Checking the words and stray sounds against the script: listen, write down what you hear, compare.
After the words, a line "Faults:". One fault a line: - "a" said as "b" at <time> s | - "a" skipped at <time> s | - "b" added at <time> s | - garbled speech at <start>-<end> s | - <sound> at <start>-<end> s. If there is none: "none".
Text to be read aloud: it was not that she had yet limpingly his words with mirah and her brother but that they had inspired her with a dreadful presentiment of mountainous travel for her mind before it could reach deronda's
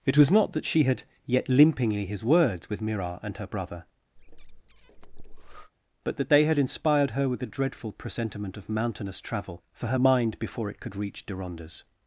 it was not that she had yet limpingly his words with mirah and her brother but that they had inspired her with a dreadful presentiment of mountainous travel for her mind before it could reach deronda's
Faults:
- breath at 4.2-5.7 s